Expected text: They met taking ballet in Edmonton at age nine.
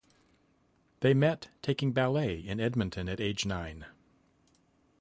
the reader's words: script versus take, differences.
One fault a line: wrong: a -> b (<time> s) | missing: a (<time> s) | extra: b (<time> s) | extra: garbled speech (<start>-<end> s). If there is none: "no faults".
no faults